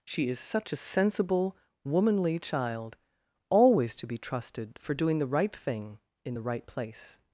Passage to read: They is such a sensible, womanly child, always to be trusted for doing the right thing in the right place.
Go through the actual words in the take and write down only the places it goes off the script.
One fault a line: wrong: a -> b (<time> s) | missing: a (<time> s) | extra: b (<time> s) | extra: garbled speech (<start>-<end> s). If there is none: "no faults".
wrong: They -> She (0.0 s)